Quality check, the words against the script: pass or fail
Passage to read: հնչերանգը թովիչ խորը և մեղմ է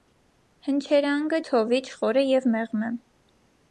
pass